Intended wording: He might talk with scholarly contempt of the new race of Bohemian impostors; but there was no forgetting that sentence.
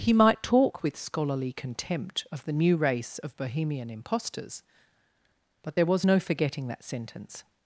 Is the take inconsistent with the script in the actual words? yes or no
no